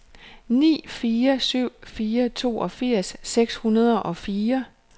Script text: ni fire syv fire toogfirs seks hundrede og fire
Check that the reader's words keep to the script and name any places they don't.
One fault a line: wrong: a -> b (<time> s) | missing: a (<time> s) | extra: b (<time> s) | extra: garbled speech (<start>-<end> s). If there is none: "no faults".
no faults